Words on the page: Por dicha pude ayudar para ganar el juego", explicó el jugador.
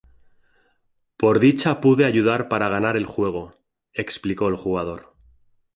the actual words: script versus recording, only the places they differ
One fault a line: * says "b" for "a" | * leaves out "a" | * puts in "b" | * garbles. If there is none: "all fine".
all fine